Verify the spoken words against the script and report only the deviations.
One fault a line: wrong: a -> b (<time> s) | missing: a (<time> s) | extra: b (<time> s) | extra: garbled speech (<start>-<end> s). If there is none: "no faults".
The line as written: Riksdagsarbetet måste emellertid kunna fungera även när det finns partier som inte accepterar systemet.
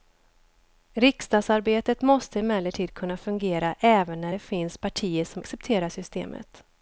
missing: inte (5.4 s)